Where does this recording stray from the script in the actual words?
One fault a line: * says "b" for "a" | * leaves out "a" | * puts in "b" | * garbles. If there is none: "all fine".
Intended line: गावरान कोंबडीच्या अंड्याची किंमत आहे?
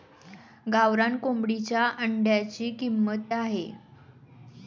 all fine